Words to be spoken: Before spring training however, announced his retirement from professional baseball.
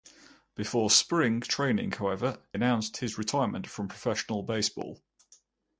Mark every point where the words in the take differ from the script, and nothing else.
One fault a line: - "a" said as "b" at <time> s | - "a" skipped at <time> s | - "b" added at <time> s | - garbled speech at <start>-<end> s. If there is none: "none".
none